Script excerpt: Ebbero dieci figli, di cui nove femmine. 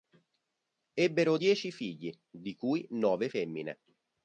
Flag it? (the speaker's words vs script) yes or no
no